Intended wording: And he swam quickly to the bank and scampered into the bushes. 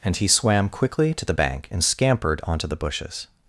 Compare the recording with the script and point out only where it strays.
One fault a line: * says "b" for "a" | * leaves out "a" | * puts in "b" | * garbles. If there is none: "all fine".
* says "onto" for "into"